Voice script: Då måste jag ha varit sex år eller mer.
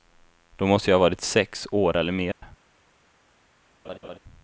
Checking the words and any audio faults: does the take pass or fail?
fail